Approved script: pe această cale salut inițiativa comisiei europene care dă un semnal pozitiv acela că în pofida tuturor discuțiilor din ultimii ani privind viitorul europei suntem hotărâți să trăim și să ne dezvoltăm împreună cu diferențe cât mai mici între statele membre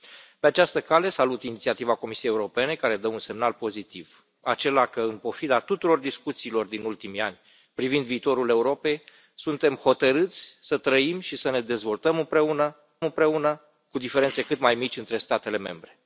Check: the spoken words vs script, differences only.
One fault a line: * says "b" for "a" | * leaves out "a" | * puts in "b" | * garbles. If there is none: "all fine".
* puts in "împreună"